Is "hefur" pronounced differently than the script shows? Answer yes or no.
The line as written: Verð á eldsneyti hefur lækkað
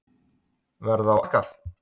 yes